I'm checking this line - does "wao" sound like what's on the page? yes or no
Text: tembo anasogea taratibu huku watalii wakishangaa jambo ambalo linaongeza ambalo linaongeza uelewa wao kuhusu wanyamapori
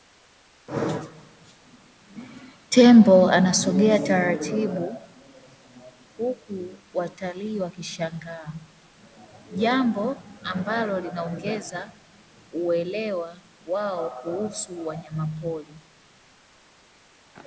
yes